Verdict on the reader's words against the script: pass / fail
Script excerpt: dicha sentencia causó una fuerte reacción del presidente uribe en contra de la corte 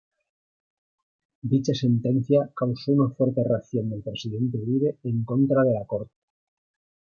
pass